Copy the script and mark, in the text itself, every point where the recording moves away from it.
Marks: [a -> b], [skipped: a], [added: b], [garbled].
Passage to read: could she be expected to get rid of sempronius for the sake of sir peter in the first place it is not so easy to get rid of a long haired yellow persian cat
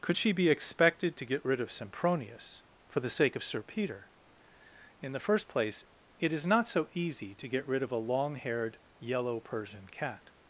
could she be expected to get rid of sempronius for the sake of sir peter in the first place it is not so easy to get rid of a long haired yellow persian cat